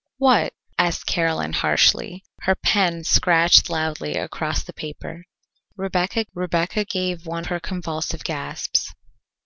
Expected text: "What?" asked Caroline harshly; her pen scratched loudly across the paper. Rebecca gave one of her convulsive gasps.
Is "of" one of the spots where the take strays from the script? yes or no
yes